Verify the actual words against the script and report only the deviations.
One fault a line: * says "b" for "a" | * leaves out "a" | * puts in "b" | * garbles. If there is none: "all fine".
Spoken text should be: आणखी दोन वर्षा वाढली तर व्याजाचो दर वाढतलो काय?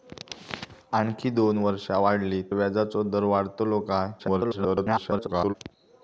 * leaves out "तर"
* garbles